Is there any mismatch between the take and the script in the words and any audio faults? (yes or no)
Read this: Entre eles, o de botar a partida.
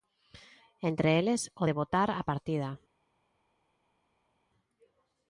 no